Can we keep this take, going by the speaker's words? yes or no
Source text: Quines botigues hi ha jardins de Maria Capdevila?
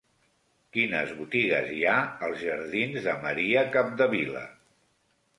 no